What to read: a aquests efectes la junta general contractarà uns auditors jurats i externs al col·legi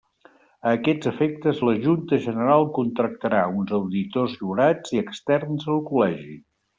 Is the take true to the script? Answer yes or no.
yes